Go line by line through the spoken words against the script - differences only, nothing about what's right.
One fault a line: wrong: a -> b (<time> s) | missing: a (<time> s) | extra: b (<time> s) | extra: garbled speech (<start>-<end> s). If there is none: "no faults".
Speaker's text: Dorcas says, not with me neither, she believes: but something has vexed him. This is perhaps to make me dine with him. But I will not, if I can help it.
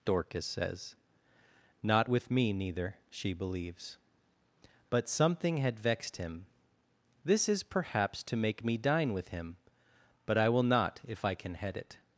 wrong: has -> had (5.6 s)
wrong: help -> head (11.5 s)